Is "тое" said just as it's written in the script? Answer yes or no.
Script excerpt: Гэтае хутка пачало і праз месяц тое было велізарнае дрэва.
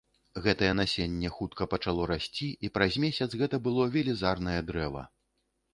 no